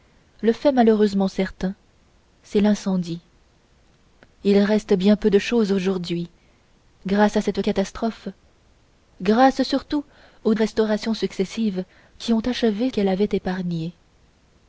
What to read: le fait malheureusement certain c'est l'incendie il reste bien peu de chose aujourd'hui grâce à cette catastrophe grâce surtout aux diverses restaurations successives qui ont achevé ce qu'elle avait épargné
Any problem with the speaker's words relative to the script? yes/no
yes